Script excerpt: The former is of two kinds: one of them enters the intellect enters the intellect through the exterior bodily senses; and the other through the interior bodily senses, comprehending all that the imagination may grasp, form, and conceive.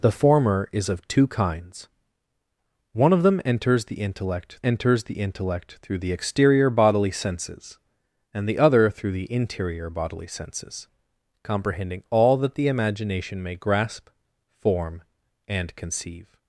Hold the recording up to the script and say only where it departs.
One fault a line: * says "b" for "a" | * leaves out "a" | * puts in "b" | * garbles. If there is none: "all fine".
all fine